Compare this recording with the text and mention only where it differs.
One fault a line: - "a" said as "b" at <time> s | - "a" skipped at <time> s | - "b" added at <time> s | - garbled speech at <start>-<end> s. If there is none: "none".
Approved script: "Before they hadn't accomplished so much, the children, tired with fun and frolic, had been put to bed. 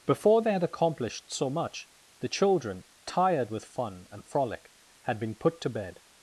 - "hadn't" said as "had" at 0.5 s